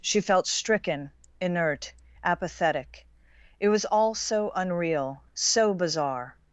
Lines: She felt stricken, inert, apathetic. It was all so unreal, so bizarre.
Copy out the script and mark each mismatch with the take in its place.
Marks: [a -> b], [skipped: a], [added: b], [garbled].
She felt stricken, inert, apathetic. It was all so unreal, so bizarre.